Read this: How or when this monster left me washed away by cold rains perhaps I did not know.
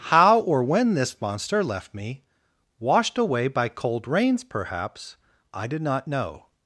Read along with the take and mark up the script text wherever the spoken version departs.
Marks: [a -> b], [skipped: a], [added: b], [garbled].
How or when this monster left me washed away by cold rains perhaps I did not know.